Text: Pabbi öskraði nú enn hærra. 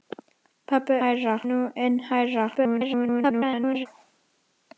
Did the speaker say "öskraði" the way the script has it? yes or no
no